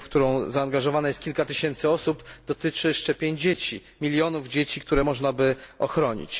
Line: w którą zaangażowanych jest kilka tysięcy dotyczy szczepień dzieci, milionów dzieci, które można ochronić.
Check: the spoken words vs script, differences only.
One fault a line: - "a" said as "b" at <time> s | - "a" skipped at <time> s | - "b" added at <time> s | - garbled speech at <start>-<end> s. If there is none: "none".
- "osób" added at 1.9 s
- "by" added at 5.3 s